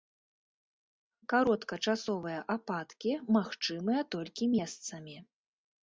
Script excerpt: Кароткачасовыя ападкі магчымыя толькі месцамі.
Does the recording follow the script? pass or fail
pass